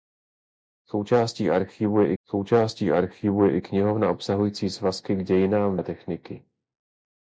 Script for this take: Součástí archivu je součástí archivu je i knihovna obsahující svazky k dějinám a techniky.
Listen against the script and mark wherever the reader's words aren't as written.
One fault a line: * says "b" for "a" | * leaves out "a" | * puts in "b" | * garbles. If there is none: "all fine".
all fine